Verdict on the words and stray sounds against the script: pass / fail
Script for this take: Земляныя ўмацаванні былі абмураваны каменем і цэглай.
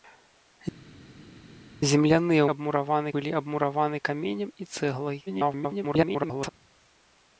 fail